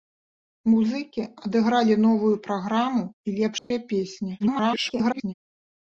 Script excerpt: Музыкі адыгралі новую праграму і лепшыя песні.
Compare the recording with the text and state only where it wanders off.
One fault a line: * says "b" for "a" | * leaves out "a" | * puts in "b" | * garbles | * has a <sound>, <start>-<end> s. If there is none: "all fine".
* has a dropout, 3.6-3.7 s
* garbles